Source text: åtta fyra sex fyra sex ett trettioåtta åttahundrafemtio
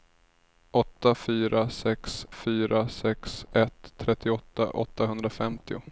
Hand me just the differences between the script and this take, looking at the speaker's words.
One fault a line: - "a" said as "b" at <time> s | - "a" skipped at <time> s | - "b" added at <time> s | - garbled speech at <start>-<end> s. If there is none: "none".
none